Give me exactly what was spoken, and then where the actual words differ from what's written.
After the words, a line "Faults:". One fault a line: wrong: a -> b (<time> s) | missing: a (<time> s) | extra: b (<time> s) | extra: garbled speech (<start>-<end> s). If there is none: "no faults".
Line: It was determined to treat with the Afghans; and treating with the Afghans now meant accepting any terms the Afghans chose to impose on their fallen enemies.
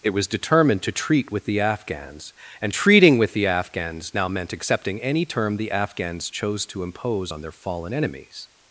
It was determined to treat with the Afghans; and treating with the Afghans now meant accepting any term the Afghans chose to impose on their fallen enemies.
Faults:
wrong: terms -> term (5.3 s)